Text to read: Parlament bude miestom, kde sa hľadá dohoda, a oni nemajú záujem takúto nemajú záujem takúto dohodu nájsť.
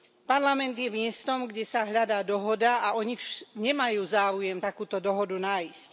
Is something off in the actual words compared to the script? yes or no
yes